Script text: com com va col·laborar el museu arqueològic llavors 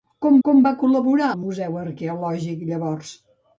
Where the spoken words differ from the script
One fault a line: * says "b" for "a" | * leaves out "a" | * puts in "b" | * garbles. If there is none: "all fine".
all fine